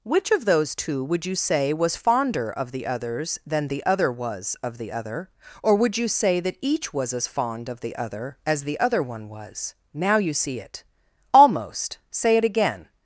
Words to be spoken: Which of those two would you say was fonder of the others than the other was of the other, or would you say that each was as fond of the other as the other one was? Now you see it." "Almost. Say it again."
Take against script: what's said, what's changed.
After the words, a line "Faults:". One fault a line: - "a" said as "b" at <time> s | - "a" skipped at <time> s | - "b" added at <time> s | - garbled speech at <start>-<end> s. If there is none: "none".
Which of those two would you say was fonder of the others than the other was of the other, or would you say that each was as fond of the other as the other one was? Now you see it." "Almost. Say it again."
Faults:
none